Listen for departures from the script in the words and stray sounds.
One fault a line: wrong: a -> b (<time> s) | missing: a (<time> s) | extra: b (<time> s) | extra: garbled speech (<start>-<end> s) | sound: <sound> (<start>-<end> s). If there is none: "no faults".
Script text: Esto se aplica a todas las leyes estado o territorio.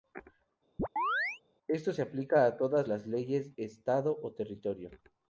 sound: chirp (0.8-1.4 s)